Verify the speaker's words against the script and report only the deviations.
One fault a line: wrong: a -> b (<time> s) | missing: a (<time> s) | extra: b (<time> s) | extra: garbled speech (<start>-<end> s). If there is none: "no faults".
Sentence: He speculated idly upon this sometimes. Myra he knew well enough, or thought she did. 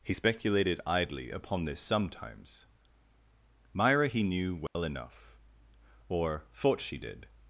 no faults